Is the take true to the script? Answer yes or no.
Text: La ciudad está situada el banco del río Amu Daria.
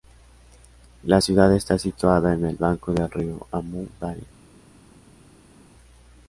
no